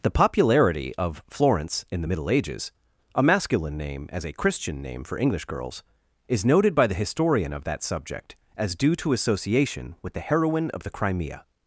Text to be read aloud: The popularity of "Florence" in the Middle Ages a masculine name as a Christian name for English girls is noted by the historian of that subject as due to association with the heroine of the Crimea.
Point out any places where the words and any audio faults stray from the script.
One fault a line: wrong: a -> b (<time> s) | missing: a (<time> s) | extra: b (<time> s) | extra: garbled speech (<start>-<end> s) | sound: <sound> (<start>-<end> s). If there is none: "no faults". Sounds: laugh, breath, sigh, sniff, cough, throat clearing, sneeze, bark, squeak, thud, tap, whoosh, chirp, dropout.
no faults